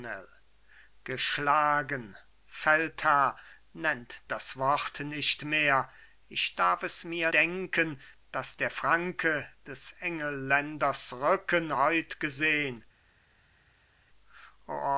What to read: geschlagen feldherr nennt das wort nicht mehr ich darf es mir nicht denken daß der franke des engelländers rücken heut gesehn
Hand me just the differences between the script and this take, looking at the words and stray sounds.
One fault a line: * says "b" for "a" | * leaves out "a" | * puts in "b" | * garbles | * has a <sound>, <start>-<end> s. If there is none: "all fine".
* leaves out "nicht"